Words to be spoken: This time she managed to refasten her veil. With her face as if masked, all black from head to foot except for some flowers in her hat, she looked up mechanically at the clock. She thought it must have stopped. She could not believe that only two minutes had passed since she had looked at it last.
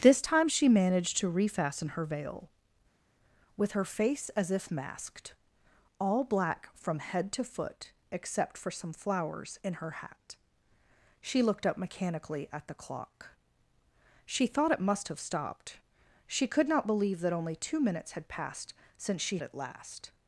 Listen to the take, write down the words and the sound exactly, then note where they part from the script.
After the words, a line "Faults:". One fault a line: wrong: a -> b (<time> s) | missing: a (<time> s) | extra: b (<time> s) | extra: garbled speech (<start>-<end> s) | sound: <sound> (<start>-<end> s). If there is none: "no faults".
This time she managed to refasten her veil. With her face as if masked, all black from head to foot except for some flowers in her hat, she looked up mechanically at the clock. She thought it must have stopped. She could not believe that only two minutes had passed since she it last.
Faults:
missing: had looked at (19.4 s)